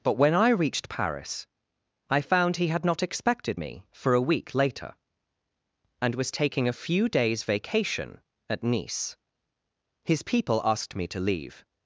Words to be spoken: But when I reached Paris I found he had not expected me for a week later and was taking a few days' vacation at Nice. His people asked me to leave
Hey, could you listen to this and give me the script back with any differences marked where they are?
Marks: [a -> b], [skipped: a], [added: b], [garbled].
But when I reached Paris I found he had not expected me for a week later and was taking a few days' vacation at Nice. His people asked me to leave